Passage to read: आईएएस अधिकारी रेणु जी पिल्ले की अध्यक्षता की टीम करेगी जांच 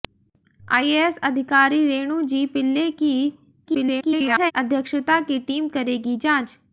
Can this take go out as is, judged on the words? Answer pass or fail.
fail